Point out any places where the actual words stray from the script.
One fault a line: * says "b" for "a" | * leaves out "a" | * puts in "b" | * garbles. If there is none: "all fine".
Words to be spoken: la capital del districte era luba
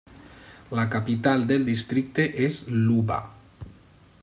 * says "és" for "era"